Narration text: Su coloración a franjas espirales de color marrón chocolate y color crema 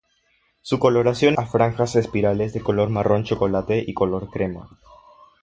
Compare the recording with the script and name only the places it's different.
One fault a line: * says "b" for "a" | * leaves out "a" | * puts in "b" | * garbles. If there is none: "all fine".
all fine